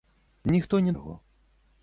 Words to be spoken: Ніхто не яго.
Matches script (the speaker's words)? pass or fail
pass